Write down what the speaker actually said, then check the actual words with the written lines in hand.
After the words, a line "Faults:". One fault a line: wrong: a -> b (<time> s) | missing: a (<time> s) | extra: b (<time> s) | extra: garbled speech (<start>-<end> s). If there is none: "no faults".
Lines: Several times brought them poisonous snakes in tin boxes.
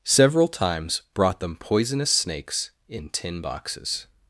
Several times brought them poisonous snakes in tin boxes.
Faults:
no faults